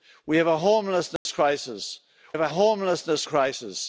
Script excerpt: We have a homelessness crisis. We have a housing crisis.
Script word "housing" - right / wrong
wrong